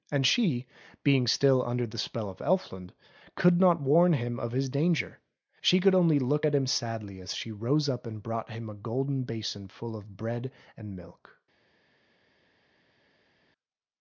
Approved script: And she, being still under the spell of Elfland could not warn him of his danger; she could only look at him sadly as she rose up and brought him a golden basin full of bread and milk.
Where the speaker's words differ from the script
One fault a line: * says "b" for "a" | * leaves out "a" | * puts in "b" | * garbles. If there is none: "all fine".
all fine